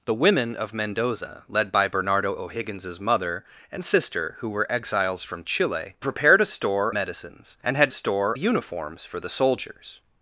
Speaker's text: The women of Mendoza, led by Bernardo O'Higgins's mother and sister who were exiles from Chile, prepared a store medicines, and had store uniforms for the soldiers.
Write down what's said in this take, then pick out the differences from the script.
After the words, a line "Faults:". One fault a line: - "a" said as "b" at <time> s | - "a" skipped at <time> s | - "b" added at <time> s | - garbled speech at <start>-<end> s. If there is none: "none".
The women of Mendoza, led by Bernardo O'Higgins's mother and sister who were exiles from Chile, prepared a store medicines, and had store uniforms for the soldiers.
Faults:
none